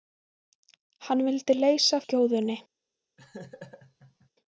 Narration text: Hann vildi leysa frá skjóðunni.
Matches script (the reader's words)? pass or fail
fail